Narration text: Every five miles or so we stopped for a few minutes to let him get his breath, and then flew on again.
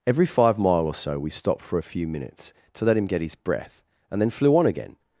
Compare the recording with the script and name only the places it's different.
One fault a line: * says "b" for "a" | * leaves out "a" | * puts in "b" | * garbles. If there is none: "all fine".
* says "mile" for "miles"